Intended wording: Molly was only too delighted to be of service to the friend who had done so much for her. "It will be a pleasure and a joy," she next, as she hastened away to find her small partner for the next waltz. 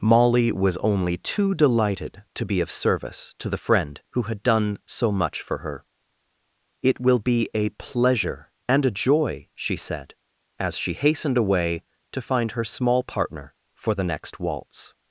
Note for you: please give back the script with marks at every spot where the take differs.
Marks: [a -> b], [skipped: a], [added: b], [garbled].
Molly was only too delighted to be of service to the friend who had done so much for her. "It will be a pleasure and a joy," she [next, -> said] as she hastened away to find her small partner for the next waltz.